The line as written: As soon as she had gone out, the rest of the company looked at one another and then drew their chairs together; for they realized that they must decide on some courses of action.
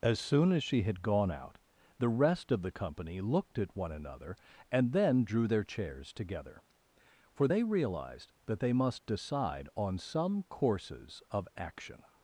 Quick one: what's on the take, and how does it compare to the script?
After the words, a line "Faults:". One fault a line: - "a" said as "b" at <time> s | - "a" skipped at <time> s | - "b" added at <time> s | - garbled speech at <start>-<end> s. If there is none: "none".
As soon as she had gone out, the rest of the company looked at one another and then drew their chairs together; for they realized that they must decide on some courses of action.
Faults:
none